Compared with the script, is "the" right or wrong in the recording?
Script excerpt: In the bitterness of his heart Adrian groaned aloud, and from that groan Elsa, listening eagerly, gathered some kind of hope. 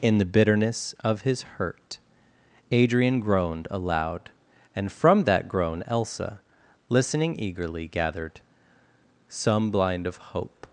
right